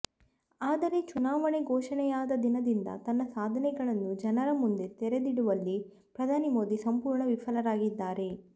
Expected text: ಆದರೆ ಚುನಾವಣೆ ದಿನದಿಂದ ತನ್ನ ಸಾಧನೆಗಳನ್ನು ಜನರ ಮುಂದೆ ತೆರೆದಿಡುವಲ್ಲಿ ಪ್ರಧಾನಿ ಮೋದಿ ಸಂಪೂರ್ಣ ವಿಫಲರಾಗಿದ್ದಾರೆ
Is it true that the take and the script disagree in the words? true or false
true